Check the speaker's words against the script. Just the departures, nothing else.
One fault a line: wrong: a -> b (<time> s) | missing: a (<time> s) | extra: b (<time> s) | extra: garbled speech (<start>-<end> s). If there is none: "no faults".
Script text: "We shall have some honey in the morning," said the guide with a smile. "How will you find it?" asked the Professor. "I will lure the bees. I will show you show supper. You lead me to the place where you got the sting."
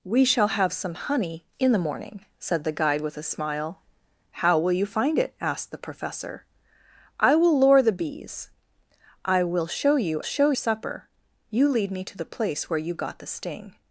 no faults